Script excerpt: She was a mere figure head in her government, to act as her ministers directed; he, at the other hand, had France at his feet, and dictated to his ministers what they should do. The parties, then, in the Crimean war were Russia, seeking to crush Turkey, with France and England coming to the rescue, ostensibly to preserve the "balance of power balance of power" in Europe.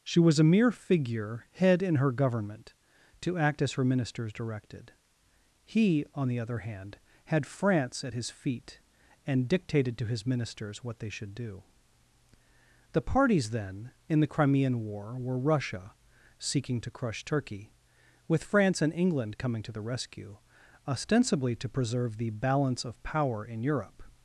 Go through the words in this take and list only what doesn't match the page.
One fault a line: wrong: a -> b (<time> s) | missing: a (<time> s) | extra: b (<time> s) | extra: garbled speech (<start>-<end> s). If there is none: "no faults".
wrong: at -> on (6.1 s)
missing: balance of power (23.5 s)